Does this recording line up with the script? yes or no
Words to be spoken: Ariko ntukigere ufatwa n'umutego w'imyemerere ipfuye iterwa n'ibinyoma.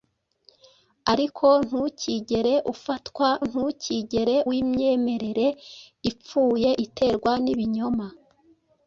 no